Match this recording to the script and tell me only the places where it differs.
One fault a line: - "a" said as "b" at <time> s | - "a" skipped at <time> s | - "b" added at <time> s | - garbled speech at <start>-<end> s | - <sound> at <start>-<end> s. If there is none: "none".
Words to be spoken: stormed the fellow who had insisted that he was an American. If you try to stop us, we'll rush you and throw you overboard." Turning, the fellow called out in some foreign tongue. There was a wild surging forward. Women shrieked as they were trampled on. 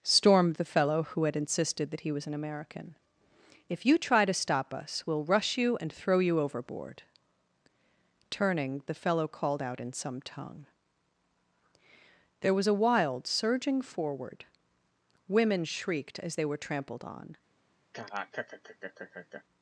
- "foreign" skipped at 10.2 s
- laugh at 17.9-19.4 s